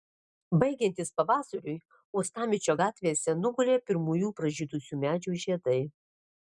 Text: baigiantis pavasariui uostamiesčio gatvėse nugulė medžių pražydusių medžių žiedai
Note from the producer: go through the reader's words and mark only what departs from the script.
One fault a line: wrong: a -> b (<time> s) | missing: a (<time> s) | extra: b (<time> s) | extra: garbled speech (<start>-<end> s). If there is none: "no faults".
wrong: medžių -> pirmųjų (3.9 s)